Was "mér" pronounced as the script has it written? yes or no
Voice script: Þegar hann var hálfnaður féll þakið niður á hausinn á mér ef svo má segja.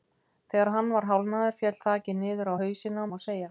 no